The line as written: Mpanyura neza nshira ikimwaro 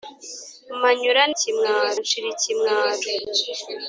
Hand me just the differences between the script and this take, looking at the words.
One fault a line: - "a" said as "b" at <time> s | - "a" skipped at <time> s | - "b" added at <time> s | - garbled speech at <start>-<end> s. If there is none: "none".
- "neza" said as "ikimwaro" at 1.3 s